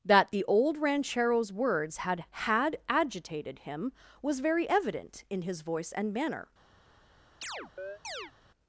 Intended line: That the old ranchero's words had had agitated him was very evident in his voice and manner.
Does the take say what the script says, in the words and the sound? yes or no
no